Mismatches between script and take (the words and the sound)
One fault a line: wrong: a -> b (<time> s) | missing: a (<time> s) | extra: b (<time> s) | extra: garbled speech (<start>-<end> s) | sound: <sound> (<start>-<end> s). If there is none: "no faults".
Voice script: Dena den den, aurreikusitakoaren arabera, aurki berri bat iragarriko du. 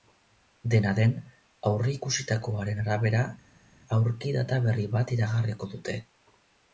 missing: den (1.1 s)
extra: data (4.4 s)
wrong: du -> dute (5.8 s)